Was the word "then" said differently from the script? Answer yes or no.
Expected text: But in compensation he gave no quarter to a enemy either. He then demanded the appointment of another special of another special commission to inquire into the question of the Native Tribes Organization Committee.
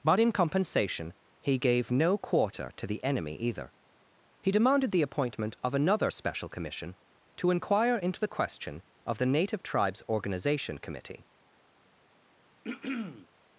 yes